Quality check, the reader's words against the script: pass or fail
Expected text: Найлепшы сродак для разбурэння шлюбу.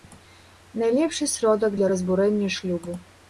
pass